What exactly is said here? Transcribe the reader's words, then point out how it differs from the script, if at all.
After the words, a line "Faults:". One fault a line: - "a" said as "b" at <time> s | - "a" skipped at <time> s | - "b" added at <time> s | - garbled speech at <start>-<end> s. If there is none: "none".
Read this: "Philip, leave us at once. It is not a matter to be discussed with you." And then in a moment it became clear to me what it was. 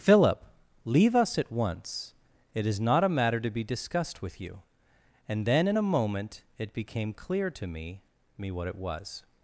"Philip, leave us at once. It is not a matter to be discussed with you." And then in a moment it became clear to me me what it was.
Faults:
- "me" added at 8.4 s